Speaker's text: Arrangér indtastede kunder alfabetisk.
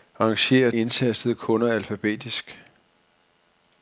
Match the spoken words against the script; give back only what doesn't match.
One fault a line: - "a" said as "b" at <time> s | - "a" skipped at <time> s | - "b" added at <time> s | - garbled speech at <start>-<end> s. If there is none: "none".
none